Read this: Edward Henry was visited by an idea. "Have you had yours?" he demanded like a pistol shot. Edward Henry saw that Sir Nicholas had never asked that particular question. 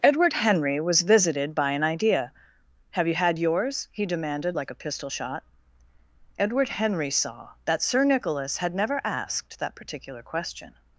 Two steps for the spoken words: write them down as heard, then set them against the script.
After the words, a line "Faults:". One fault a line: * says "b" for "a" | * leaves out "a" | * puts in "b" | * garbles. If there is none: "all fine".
Edward Henry was visited by an idea. "Have you had yours?" he demanded like a pistol shot. Edward Henry saw that Sir Nicholas had never asked that particular question.
Faults:
all fine